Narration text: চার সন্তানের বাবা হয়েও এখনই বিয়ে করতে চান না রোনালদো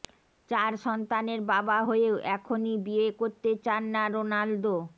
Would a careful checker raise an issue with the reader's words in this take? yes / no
no